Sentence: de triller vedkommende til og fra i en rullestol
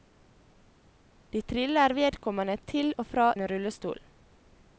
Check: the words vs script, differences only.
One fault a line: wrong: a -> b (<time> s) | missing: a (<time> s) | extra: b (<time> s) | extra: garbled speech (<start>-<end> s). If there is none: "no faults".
missing: i (3.3 s)